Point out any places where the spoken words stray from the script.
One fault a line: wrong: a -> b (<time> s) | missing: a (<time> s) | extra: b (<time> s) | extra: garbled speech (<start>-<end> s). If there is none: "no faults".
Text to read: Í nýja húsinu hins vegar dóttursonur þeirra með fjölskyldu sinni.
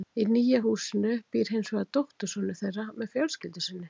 extra: býr (1.3 s)